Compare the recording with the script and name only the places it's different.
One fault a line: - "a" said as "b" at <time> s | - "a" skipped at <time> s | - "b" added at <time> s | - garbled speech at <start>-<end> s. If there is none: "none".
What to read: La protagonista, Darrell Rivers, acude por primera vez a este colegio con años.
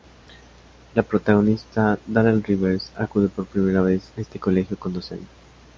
- "doce" added at 4.9 s